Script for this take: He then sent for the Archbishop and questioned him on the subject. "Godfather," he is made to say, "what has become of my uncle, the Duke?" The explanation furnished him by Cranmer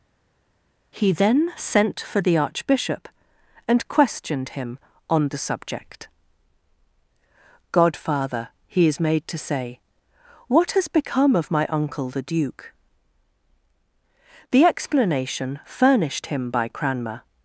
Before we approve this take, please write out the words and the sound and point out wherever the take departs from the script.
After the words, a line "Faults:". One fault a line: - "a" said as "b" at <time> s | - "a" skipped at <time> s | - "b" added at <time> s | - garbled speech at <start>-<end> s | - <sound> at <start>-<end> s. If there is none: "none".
He then sent for the Archbishop and questioned him on the subject. "Godfather," he is made to say, "what has become of my uncle, the Duke?" The explanation furnished him by Cranmer
Faults:
none